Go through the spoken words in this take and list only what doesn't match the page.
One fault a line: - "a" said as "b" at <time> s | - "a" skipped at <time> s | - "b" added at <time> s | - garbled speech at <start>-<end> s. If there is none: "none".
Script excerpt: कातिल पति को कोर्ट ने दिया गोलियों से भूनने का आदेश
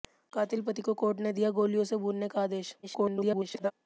- garbled speech at 2.8-3.7 s